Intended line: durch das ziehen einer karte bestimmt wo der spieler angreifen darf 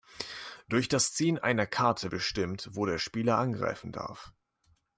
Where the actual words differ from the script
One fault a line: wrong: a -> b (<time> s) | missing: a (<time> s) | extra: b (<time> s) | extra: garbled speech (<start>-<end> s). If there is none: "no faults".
no faults